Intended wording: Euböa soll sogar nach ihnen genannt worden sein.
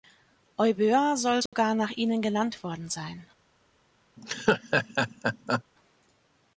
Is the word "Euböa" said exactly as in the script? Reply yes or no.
yes